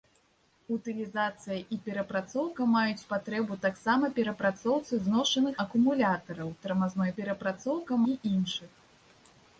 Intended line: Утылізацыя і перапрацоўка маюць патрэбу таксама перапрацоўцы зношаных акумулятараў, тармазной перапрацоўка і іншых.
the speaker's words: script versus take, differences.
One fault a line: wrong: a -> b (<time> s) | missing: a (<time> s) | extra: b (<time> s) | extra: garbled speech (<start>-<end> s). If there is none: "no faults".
no faults